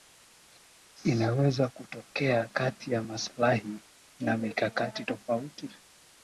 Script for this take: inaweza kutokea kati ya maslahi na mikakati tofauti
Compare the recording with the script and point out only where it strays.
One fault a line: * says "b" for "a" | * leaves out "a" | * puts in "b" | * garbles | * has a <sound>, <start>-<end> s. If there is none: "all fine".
all fine